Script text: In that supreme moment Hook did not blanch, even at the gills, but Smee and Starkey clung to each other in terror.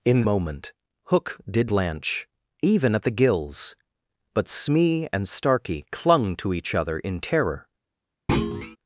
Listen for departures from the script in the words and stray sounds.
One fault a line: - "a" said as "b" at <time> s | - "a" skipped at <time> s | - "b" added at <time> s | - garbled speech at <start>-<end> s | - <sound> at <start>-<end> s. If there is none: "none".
- "that supreme" skipped at 0.2 s
- "not" skipped at 1.7 s
- thud at 8.3-8.8 s